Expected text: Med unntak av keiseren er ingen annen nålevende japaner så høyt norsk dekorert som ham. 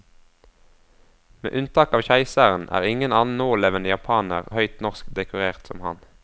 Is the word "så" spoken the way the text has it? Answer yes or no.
no